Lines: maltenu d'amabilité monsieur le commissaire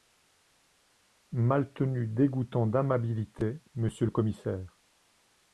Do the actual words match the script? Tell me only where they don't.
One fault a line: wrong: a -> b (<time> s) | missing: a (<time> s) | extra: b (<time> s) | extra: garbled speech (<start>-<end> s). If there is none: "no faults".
extra: dégoûtant (2.1 s)